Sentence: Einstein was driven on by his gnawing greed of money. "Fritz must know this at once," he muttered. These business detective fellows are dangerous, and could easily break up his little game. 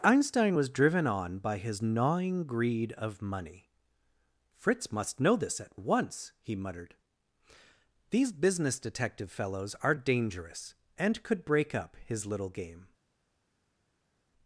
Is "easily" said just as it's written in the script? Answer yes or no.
no